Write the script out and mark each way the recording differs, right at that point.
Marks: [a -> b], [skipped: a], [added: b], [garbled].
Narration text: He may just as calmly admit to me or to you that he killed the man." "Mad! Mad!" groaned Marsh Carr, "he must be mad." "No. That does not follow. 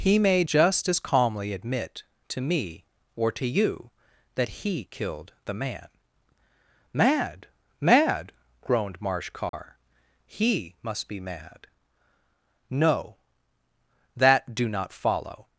He may just as calmly admit to me or to you that he killed the man." "Mad! Mad!" groaned Marsh Carr, "he must be mad." "No. That [does -> do] not follow.